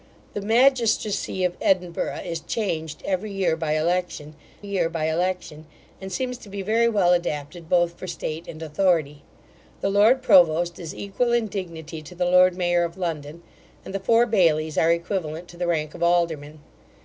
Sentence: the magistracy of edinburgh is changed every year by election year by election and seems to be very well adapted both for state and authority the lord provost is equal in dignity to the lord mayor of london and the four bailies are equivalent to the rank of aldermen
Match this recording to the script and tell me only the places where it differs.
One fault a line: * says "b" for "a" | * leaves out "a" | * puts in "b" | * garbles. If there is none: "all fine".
all fine